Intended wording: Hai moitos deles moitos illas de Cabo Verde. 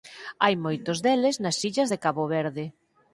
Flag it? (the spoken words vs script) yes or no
yes